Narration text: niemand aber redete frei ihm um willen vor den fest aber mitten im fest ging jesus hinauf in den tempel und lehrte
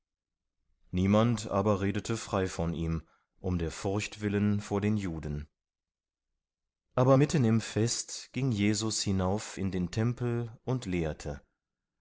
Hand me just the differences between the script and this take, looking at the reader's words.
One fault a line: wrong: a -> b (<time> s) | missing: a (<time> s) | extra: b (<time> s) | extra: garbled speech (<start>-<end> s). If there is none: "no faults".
extra: von (2.5 s)
extra: der furcht (3.6 s)
wrong: fest -> juden (5.0 s)